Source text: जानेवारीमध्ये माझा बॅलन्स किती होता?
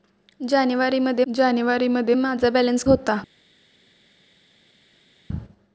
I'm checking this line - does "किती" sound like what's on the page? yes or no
no